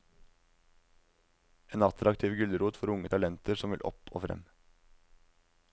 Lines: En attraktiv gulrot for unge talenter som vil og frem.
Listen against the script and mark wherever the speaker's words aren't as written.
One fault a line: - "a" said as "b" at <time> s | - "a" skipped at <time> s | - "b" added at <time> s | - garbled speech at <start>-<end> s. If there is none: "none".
- "opp" added at 3.9 s